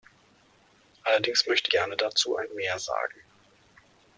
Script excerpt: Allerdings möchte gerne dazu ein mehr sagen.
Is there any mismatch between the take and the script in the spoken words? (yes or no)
no